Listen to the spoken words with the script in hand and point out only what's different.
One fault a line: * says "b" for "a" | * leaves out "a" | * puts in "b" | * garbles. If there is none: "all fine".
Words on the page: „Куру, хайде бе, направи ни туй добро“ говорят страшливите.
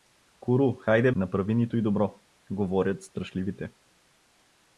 * leaves out "бе"